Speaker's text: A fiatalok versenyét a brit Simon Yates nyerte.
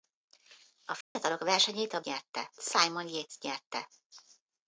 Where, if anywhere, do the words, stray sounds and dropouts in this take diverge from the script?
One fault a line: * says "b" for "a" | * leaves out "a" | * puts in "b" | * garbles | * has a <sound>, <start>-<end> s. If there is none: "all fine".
* has a dropout, 1.0-1.2 s
* says "nyerte" for "brit"